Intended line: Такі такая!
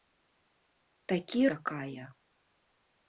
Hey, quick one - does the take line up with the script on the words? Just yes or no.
yes